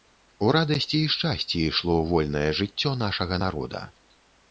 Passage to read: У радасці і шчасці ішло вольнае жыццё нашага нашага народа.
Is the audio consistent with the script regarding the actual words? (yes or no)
no